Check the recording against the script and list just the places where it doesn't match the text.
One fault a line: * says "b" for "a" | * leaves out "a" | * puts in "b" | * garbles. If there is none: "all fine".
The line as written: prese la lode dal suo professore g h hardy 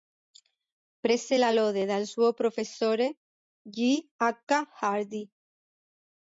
all fine